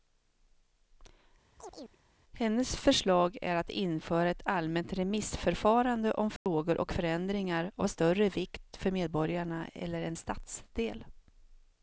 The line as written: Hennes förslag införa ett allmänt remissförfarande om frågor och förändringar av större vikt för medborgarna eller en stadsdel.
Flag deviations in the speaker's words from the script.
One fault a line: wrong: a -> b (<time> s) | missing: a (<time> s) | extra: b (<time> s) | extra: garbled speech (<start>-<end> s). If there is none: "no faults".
extra: är att (3.4 s)